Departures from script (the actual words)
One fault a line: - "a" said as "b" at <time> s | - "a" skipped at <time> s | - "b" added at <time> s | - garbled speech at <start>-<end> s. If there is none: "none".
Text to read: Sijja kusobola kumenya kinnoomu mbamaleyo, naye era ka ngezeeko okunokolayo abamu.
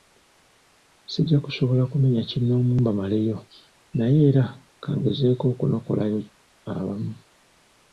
none